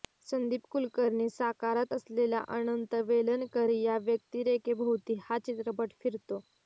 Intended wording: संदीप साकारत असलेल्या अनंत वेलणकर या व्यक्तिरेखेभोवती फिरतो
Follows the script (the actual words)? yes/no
no